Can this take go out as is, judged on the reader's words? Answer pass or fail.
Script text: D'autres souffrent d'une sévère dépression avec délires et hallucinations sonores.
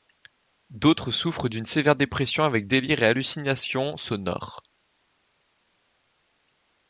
pass